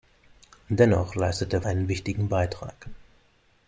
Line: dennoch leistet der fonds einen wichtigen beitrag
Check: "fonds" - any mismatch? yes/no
yes